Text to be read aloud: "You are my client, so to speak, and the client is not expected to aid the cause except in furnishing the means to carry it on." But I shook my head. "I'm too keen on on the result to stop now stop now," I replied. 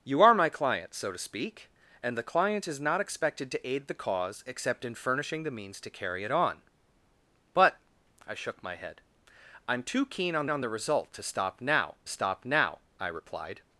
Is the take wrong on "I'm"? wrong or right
right